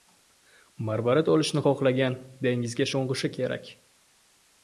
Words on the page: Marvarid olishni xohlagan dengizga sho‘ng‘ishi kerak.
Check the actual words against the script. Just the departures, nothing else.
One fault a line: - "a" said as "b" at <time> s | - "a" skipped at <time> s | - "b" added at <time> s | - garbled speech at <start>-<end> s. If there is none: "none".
none